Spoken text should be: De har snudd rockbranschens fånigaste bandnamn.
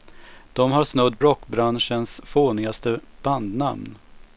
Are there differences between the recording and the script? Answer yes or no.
no